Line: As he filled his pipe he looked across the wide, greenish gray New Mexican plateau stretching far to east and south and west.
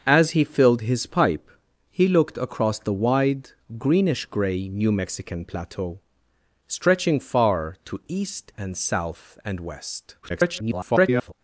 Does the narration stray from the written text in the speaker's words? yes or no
yes